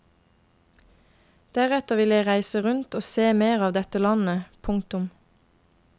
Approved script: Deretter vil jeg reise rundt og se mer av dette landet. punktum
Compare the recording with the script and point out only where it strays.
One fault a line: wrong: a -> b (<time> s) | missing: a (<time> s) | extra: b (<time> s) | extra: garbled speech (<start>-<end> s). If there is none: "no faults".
no faults